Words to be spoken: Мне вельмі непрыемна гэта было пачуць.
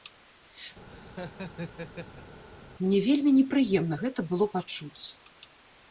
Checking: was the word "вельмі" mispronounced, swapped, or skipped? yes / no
no